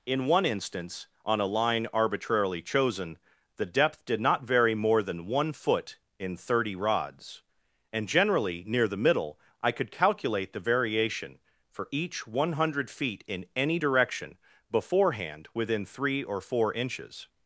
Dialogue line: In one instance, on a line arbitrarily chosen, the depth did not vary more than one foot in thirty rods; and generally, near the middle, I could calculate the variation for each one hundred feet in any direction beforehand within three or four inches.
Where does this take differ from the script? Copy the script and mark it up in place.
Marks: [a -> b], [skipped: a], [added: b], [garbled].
In one instance, on a line arbitrarily chosen, the depth did not vary more than one foot in thirty rods; and generally, near the middle, I could calculate the variation for each one hundred feet in any direction beforehand within three or four inches.